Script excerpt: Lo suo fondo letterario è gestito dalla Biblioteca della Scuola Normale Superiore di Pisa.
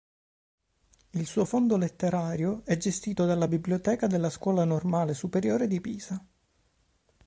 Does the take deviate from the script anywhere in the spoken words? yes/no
yes